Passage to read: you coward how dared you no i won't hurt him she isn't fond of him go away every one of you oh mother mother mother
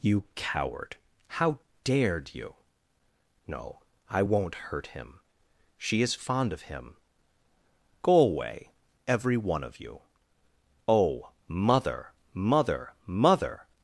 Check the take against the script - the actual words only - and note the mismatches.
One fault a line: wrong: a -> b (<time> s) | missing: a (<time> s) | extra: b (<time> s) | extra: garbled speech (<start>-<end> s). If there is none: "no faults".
wrong: isn't -> is (6.0 s)